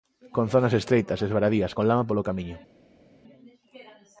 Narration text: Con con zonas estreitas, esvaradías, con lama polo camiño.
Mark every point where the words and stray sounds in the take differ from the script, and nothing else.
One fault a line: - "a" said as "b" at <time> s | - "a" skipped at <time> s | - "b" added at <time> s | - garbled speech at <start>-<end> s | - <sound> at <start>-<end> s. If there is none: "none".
- "con" skipped at 0.5 s